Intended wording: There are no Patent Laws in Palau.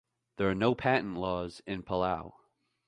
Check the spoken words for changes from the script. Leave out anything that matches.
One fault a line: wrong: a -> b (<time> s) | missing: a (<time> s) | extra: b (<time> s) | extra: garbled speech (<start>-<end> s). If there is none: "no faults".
no faults